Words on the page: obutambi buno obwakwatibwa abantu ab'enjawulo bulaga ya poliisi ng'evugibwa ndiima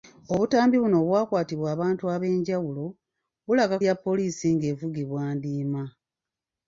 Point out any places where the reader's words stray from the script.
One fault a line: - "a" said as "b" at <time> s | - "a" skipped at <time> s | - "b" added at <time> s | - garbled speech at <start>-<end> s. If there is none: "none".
none